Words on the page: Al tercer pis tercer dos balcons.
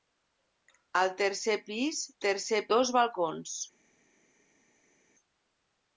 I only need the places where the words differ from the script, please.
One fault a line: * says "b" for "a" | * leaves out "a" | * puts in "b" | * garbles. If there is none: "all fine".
all fine